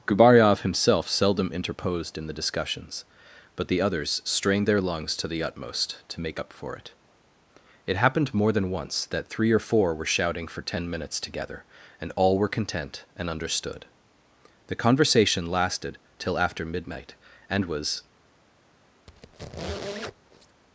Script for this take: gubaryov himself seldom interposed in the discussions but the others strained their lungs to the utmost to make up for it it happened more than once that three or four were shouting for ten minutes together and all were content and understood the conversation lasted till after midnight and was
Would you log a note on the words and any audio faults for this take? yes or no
yes